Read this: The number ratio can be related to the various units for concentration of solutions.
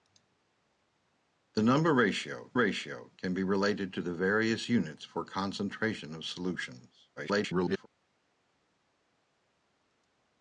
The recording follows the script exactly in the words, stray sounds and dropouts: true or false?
false